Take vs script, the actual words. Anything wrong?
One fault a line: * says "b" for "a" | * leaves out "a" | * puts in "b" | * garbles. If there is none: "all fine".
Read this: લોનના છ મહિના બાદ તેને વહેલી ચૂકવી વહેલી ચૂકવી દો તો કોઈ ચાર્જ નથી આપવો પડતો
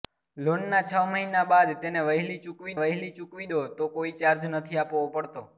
all fine